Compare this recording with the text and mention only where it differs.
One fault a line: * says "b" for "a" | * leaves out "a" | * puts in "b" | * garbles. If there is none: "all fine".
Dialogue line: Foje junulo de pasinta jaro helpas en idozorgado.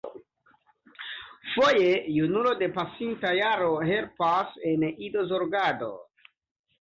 all fine